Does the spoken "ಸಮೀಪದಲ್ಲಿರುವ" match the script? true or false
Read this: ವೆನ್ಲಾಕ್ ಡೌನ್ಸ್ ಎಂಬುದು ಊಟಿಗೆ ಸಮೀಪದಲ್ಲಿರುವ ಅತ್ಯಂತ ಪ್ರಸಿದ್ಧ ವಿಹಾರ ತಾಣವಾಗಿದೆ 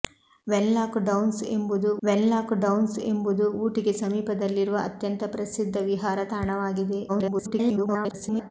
true